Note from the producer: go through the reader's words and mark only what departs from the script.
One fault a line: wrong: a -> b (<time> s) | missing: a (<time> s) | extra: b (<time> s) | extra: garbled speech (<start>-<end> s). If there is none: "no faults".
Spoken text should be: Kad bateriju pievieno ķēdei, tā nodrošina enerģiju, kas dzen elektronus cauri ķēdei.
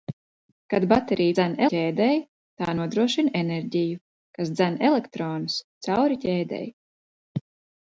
wrong: pievieno -> dzen (1.3 s)